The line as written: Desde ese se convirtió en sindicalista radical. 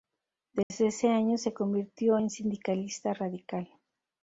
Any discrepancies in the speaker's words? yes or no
yes